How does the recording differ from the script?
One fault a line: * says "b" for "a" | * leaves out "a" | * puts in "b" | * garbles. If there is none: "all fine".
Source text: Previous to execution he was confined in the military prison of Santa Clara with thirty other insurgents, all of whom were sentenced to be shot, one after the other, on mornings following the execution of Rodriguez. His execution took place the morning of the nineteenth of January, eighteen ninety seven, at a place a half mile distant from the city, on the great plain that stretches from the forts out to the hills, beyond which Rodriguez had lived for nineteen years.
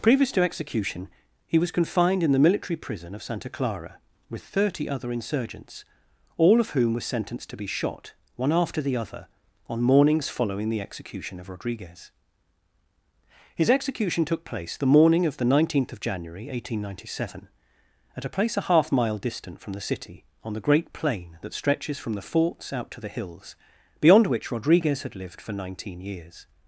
all fine